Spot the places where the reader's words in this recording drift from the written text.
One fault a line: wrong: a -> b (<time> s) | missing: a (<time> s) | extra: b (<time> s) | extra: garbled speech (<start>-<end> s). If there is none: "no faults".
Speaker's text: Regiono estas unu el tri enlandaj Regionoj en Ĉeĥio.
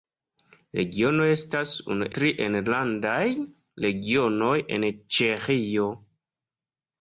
missing: el (2.1 s)